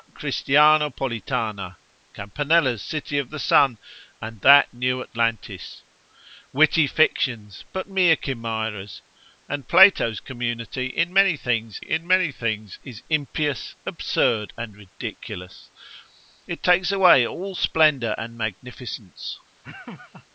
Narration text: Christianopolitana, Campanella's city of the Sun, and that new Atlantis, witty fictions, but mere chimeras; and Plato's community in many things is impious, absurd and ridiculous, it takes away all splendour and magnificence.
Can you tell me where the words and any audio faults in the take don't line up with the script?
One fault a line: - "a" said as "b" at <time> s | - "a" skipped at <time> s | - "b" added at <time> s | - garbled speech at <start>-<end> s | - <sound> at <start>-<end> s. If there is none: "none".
- "in many things" added at 11.8 s
- laugh at 19.6-20.3 s